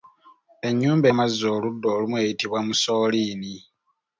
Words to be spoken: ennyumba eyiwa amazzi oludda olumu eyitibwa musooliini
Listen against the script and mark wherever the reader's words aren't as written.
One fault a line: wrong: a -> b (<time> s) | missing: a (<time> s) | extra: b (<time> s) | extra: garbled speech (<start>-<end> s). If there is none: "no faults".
missing: eyiwa (1.1 s)